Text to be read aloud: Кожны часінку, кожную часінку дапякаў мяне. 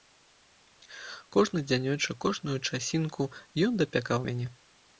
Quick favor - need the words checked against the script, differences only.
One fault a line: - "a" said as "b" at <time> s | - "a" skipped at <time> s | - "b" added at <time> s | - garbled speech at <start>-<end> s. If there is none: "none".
- "часінку" said as "дзянёчак" at 1.7 s
- "ён" added at 3.7 s